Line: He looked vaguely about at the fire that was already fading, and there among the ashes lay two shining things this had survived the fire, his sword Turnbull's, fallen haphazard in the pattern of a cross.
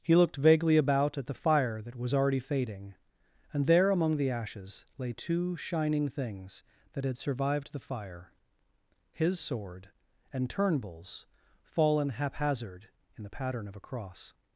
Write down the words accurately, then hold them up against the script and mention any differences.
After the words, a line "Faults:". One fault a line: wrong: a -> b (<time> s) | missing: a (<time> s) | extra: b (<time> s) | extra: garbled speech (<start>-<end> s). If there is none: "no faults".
He looked vaguely about at the fire that was already fading, and there among the ashes lay two shining things that had survived the fire, his sword and Turnbull's, fallen haphazard in the pattern of a cross.
Faults:
wrong: this -> that (6.9 s)
extra: and (10.3 s)